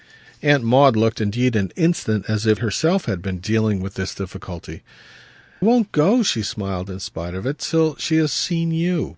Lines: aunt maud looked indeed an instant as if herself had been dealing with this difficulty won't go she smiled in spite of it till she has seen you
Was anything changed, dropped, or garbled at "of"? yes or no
no